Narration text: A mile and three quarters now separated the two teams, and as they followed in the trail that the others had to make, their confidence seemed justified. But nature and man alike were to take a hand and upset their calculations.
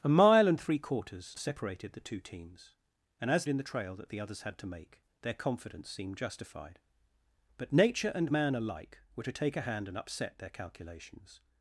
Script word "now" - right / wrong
wrong